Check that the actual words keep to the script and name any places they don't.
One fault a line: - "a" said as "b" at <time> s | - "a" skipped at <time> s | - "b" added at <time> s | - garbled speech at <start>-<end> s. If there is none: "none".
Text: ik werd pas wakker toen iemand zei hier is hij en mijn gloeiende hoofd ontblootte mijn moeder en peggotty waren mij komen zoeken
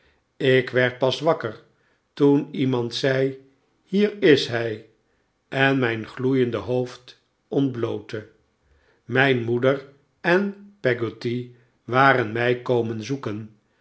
none